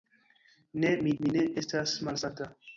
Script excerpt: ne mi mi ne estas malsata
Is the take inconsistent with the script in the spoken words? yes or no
no